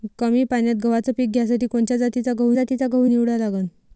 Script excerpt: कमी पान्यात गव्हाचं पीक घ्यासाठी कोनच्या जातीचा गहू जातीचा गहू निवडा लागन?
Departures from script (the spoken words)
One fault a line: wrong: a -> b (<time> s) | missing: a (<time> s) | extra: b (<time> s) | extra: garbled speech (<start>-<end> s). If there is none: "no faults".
no faults